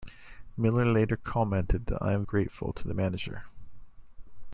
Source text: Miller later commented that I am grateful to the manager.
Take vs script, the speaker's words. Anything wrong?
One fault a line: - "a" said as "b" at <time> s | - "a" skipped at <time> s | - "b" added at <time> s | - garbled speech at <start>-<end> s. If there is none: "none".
none